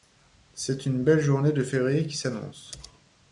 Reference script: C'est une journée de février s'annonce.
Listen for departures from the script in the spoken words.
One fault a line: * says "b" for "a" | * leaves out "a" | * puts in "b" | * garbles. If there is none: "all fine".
* puts in "belle"
* puts in "qui"